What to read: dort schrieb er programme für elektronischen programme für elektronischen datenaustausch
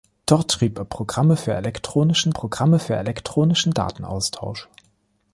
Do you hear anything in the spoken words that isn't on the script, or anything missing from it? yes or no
no